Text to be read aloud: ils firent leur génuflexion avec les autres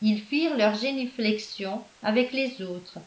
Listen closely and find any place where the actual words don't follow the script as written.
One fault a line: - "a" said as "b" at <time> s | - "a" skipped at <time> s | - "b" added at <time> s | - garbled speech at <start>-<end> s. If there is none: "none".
none